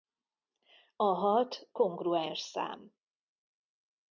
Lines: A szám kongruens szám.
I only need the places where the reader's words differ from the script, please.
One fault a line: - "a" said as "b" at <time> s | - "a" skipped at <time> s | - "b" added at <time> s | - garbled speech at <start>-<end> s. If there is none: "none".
- "szám" said as "hat" at 1.0 s